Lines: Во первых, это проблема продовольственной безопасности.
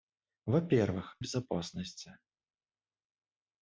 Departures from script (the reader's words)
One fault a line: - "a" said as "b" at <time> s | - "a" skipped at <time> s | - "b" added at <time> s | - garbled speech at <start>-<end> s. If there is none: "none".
- "это проблема продовольственной" skipped at 1.2 s